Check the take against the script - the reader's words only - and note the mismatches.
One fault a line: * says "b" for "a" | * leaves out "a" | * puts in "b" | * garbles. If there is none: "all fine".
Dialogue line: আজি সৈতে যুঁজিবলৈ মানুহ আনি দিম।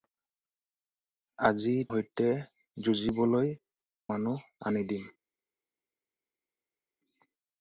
all fine